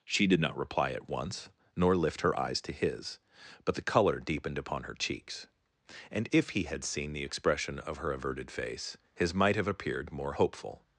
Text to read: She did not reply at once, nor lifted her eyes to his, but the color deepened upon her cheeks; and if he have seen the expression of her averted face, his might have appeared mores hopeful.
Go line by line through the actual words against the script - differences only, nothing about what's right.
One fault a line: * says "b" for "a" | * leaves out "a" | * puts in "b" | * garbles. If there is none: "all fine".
* says "lift" for "lifted"
* says "had" for "have"
* says "more" for "mores"